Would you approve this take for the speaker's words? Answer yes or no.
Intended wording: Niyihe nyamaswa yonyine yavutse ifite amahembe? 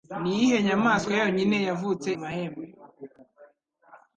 no